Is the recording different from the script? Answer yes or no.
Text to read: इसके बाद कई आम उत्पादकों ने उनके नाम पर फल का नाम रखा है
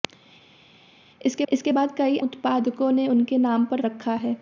yes